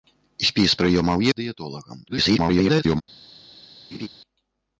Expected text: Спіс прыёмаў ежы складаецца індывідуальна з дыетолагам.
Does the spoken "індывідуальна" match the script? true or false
false